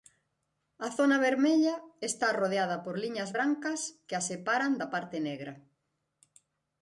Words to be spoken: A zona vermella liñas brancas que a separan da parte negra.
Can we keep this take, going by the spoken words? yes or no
no